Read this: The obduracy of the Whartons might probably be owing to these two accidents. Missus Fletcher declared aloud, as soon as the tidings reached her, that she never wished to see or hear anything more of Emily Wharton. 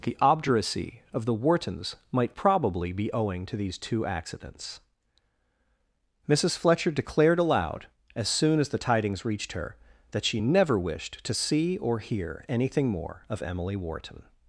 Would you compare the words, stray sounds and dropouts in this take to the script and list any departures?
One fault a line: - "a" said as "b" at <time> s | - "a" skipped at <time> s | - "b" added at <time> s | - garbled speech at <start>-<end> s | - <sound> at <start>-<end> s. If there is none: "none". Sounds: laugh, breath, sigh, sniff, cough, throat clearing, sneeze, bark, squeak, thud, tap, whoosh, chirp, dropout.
none